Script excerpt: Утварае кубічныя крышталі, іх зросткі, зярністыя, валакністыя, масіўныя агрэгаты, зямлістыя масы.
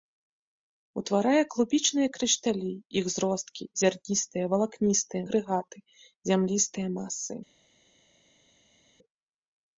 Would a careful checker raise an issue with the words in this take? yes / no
yes